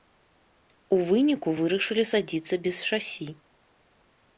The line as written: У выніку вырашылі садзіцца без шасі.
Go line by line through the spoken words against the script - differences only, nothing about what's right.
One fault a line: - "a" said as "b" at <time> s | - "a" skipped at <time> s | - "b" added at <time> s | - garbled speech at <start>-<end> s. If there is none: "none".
none